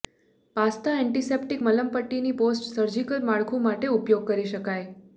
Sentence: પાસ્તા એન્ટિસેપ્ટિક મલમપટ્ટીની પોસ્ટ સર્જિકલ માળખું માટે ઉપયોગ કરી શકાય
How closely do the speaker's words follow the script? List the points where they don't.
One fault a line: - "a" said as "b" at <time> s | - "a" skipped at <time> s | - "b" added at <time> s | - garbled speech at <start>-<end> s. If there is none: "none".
none